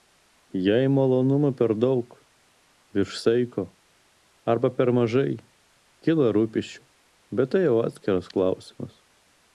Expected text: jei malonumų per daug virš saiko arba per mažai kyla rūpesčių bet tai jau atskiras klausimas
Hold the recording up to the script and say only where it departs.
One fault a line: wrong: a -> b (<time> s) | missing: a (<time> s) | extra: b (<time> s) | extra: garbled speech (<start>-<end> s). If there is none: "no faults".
no faults